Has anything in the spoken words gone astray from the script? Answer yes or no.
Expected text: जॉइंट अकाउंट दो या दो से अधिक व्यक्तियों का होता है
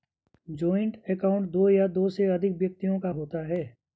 no